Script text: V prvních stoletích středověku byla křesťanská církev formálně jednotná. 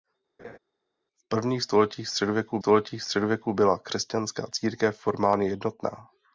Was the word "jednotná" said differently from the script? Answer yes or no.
no